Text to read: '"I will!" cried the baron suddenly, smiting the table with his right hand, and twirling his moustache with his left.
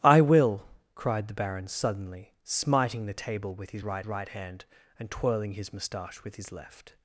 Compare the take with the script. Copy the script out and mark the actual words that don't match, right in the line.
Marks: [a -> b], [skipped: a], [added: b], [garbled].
'"I will!" cried the baron suddenly, smiting the table with his right [added: right] hand, and twirling his moustache with his left.